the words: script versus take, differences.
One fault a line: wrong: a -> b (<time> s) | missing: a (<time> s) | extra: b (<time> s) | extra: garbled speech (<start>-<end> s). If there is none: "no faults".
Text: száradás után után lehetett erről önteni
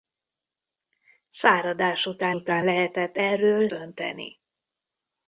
no faults